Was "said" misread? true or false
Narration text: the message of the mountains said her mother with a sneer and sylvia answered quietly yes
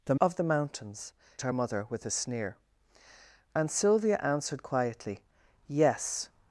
true